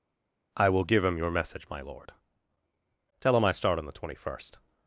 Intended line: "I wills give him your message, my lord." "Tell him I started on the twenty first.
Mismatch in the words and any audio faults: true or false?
true